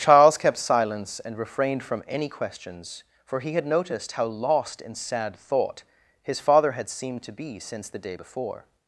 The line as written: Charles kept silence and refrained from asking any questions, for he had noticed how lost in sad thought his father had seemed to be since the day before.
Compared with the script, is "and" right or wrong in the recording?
right